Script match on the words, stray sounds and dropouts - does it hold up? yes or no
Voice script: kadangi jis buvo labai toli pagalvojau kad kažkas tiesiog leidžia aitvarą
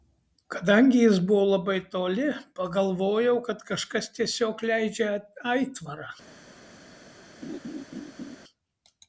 no